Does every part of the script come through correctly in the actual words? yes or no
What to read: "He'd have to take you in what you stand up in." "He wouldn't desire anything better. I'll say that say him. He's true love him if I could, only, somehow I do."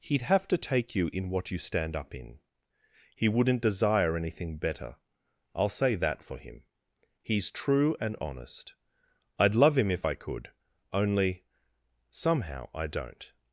no